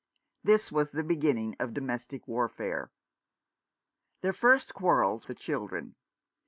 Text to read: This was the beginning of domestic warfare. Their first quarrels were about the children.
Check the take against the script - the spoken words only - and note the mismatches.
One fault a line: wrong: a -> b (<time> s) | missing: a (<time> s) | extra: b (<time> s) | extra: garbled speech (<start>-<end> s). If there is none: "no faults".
missing: were about (5.3 s)